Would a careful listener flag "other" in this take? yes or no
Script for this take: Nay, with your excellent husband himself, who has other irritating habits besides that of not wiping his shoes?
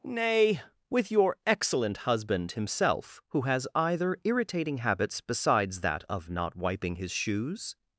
yes